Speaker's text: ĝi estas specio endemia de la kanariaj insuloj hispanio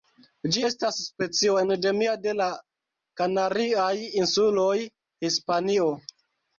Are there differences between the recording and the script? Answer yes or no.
no